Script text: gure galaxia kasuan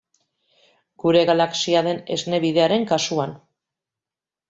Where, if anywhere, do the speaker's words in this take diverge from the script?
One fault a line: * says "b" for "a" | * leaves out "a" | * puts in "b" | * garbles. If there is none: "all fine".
* puts in "den esne bidearen"